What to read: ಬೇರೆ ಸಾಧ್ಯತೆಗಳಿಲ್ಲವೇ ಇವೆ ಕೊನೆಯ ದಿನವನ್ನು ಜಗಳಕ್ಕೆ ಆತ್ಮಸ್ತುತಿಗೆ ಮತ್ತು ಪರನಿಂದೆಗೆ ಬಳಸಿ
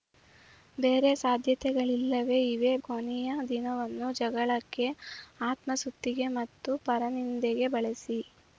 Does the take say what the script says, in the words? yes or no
yes